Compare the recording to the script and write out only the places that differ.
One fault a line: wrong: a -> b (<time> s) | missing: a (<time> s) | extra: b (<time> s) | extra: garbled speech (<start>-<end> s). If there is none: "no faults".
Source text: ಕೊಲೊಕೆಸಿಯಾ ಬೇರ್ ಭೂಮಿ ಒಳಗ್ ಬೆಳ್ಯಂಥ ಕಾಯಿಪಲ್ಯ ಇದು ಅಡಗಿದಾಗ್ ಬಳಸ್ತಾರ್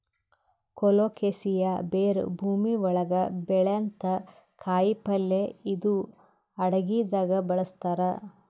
no faults